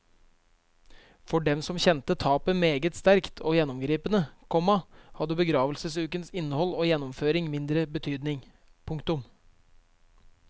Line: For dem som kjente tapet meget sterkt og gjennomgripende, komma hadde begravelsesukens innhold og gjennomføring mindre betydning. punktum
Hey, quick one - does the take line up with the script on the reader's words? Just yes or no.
yes